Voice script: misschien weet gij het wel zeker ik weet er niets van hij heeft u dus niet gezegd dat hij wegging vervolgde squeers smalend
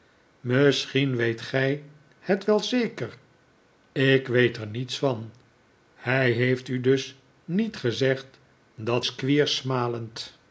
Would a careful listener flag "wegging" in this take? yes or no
yes